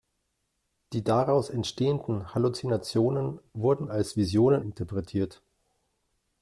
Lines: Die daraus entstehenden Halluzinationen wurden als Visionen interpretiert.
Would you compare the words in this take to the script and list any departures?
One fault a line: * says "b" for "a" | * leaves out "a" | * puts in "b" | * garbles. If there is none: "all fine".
all fine